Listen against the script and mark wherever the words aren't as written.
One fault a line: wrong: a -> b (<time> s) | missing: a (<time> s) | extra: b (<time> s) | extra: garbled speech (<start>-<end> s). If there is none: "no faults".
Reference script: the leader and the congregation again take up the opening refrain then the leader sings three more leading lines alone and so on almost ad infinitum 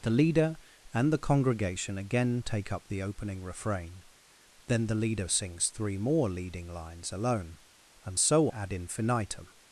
missing: on almost (8.5 s)